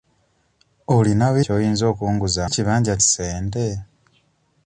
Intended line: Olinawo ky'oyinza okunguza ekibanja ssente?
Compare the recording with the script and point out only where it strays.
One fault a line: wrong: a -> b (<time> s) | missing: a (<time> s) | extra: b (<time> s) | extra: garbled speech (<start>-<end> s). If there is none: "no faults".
no faults